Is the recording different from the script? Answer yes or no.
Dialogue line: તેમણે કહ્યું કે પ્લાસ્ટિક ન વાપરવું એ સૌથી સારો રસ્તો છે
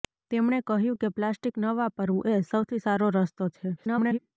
yes